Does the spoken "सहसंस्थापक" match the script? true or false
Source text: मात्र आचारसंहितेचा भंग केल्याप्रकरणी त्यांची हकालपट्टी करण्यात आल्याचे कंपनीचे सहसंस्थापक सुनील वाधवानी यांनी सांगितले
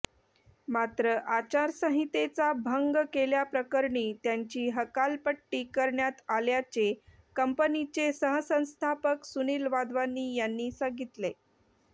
true